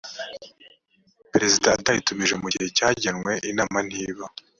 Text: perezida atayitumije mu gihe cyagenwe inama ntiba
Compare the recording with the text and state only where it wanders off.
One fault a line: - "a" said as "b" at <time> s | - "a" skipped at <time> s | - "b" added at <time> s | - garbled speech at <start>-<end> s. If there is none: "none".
none